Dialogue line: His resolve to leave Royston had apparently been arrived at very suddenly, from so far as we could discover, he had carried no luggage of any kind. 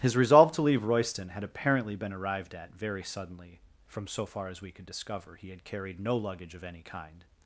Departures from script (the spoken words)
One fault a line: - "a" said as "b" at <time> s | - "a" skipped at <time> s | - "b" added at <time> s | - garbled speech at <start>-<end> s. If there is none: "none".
none